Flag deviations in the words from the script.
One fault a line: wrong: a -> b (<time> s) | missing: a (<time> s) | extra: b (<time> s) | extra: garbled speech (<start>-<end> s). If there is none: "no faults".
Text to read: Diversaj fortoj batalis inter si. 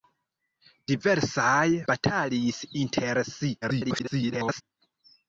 missing: fortoj (1.6 s)
extra: garbled speech (3.6-4.6 s)